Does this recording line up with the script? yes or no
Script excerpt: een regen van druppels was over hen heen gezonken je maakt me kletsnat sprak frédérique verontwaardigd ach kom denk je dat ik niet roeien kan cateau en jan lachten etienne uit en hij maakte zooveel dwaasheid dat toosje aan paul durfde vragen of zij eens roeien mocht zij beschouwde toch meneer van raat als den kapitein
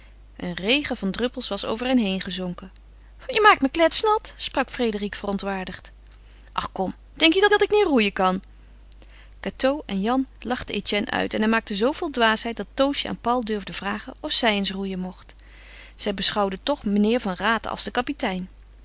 no